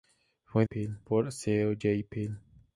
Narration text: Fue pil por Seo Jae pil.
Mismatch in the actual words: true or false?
false